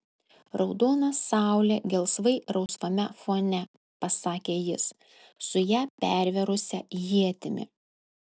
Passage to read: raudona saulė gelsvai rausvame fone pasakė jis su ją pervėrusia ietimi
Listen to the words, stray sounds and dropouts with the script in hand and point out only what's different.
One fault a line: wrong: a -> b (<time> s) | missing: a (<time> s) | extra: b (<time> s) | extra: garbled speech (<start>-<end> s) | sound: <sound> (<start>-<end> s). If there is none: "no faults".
sound: dropout (2.7-2.7 s)